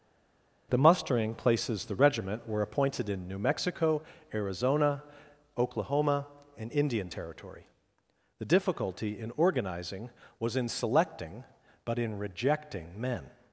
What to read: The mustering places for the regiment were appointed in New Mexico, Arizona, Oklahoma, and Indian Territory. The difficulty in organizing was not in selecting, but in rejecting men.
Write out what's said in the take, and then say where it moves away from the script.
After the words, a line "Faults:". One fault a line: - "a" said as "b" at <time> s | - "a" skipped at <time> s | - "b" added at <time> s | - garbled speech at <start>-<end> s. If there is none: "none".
The mustering places the regiment were appointed in New Mexico, Arizona, Oklahoma, and Indian Territory. The difficulty in organizing was in selecting, but in rejecting men.
Faults:
- "for" skipped at 1.9 s
- "not" skipped at 10.6 s